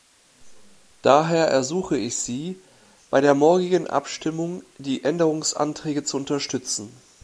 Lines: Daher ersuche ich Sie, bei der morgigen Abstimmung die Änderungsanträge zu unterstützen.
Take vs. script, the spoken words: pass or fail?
pass